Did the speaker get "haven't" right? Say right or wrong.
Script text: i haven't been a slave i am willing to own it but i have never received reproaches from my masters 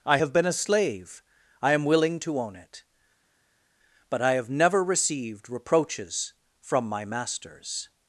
wrong